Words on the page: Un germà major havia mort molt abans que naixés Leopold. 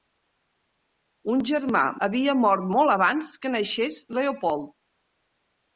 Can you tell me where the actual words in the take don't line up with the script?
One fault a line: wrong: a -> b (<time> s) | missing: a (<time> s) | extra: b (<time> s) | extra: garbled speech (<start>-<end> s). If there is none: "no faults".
missing: major (1.8 s)